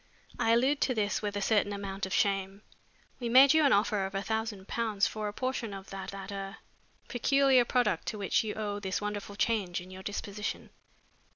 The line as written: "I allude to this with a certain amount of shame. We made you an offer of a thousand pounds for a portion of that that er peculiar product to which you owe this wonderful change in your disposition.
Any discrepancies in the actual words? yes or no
no